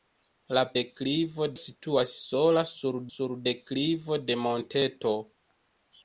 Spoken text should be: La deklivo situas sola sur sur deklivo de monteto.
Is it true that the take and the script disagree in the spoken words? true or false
false